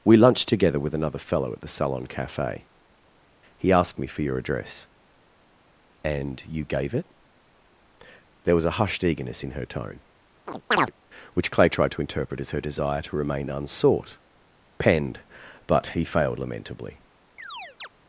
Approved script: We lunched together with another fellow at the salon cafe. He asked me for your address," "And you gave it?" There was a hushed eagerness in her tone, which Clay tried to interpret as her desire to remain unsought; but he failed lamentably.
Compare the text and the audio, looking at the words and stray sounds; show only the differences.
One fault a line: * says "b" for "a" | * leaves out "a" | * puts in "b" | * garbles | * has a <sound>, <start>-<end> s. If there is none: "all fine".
* has a chirp, 10.5-10.9 s
* puts in "penned"
* has a chirp, 17.4-17.9 s